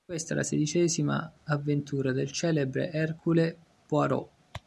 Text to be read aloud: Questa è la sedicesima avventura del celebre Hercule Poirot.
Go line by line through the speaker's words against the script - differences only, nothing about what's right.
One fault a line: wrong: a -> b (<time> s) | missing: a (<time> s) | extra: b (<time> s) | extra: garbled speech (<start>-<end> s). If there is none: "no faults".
no faults